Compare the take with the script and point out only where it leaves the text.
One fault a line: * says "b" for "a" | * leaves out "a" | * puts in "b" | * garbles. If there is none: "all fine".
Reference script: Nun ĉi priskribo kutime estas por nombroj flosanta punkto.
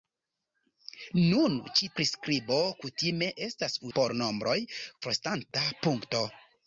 all fine